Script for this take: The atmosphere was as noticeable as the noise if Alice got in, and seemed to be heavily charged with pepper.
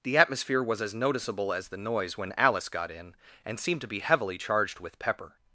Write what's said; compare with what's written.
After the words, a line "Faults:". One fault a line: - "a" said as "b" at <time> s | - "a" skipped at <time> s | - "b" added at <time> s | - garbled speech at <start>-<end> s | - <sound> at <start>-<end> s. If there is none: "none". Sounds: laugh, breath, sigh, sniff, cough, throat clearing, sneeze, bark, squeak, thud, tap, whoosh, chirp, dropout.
The atmosphere was as noticeable as the noise when Alice got in, and seemed to be heavily charged with pepper.
Faults:
- "if" said as "when" at 2.2 s